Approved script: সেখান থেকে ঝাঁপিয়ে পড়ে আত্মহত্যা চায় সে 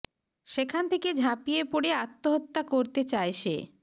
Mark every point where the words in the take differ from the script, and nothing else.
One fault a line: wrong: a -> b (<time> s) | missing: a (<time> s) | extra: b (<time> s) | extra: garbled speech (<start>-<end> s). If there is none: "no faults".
extra: করতে (2.7 s)